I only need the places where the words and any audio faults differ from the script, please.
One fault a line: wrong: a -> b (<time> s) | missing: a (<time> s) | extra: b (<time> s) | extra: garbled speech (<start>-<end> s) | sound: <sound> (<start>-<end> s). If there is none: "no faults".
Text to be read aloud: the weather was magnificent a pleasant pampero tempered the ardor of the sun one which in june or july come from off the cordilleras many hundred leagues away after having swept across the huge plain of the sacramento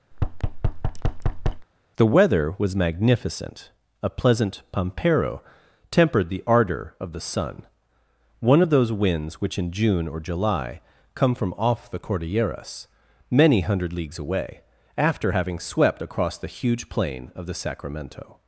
sound: thud (0.1-1.7 s)
extra: of those winds (8.6 s)